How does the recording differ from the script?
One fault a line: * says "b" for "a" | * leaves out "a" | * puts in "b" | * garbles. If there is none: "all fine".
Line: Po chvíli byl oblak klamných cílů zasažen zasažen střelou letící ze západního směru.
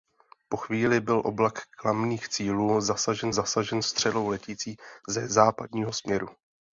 all fine